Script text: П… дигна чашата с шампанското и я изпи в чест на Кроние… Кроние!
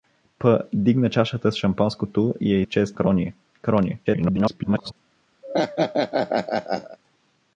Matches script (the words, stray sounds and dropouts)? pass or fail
fail